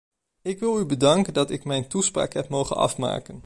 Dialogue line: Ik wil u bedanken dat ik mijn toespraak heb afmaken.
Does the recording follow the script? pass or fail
fail